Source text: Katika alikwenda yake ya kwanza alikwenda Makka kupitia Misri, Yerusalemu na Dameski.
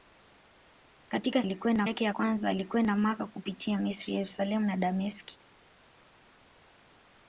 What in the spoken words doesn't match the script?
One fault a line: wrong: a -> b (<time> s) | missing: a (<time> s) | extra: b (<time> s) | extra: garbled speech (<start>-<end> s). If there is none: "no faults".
no faults